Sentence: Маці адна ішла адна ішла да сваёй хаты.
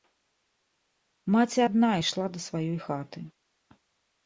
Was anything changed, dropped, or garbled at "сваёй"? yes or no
no